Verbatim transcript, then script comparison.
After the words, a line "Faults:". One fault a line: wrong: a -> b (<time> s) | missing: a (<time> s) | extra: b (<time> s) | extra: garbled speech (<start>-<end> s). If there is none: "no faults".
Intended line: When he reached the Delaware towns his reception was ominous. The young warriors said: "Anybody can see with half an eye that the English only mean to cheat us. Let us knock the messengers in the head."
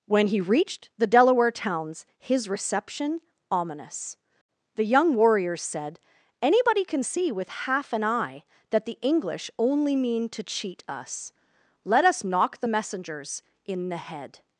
When he reached the Delaware towns his reception ominous. The young warriors said: "Anybody can see with half an eye that the English only mean to cheat us. Let us knock the messengers in the head."
Faults:
missing: was (3.2 s)